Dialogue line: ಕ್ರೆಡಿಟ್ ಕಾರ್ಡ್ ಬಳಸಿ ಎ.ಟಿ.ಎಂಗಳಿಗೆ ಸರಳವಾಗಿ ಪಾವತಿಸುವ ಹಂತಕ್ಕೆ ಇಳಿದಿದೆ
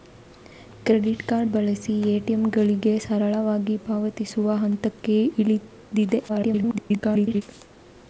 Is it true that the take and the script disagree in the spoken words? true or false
true